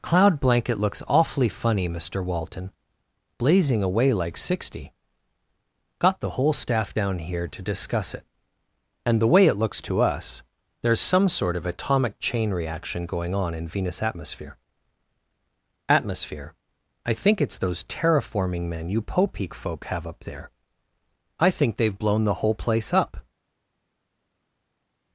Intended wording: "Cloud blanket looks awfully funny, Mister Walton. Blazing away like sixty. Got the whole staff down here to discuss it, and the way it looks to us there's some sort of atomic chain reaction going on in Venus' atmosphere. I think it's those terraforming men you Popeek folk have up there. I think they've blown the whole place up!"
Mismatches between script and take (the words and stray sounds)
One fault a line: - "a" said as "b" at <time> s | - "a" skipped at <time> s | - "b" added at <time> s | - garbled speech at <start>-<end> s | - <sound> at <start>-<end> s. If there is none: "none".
- "atmosphere" added at 15.9 s